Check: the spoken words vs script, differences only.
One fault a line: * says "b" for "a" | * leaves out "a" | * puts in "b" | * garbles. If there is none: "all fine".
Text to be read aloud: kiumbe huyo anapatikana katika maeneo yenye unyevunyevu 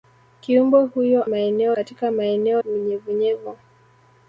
* says "maeneo" for "anapatikana"
* leaves out "yenye"